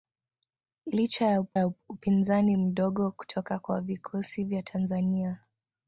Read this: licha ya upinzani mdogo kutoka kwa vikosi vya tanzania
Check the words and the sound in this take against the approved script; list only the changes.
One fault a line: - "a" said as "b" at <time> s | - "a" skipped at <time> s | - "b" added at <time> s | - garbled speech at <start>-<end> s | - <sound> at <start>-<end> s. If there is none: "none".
- "ya" added at 1.5 s